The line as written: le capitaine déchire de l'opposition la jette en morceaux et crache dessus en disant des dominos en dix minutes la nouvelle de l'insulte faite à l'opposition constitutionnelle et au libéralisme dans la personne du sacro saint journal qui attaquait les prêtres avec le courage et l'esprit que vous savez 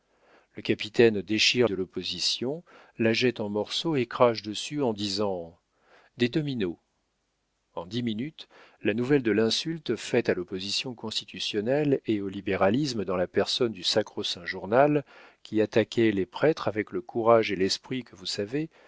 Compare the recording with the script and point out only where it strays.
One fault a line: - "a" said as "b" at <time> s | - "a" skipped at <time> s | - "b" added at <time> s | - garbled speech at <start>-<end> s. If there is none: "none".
none